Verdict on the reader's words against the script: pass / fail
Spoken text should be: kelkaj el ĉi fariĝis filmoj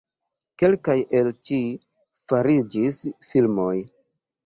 pass